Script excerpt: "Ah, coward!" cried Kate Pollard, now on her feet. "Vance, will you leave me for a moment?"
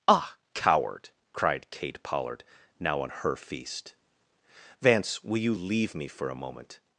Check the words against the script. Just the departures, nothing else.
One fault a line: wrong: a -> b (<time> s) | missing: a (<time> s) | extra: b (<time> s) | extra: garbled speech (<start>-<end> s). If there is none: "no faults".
wrong: feet -> feast (3.4 s)